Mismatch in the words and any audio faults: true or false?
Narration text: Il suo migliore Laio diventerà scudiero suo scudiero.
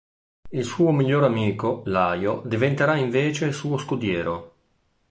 true